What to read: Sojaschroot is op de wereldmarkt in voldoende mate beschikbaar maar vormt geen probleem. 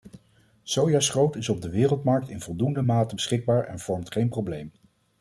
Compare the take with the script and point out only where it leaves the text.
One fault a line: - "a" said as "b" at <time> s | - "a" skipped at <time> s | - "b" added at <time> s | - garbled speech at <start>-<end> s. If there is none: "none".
- "maar" said as "en" at 3.6 s